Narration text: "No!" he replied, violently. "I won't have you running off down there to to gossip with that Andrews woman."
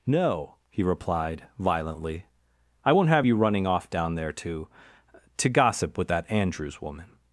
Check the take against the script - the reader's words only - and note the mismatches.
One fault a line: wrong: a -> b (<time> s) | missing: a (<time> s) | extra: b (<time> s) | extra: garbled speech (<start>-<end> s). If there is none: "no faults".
no faults